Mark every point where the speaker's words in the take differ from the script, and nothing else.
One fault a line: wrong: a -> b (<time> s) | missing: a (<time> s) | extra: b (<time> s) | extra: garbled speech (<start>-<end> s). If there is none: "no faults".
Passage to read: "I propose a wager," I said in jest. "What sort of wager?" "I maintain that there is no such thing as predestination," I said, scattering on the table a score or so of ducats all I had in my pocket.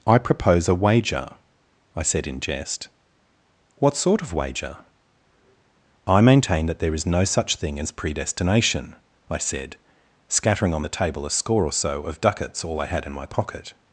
no faults